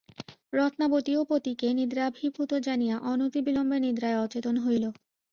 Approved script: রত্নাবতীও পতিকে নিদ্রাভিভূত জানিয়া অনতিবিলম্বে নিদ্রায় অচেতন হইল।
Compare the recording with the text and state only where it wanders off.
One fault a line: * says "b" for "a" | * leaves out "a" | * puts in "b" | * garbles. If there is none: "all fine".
all fine